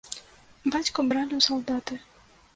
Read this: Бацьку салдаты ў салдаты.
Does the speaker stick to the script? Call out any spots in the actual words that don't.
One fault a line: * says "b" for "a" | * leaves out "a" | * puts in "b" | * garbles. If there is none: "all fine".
* says "бралі" for "салдаты"